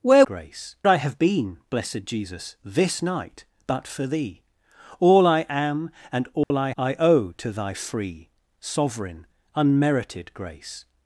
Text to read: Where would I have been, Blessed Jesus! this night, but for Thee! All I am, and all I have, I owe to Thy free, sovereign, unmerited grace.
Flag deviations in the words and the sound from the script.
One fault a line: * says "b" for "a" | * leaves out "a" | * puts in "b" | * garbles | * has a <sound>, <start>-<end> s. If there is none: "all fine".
* says "grace" for "would"
* has a dropout, 6.4-6.5 s
* leaves out "have"